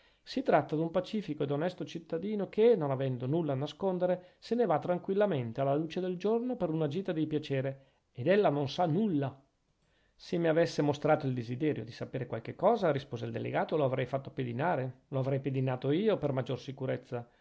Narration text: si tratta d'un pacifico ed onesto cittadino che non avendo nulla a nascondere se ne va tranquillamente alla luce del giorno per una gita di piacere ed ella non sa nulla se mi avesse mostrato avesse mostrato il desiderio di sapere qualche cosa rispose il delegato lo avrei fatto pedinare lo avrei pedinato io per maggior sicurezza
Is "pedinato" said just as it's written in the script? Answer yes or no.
yes